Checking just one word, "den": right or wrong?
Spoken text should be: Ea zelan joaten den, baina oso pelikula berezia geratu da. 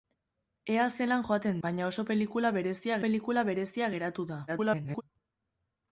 wrong